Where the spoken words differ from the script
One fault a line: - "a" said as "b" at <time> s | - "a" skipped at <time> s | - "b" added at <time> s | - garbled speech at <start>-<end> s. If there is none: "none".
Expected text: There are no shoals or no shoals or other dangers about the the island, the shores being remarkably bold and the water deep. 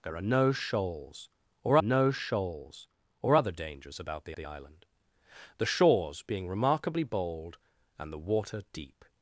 none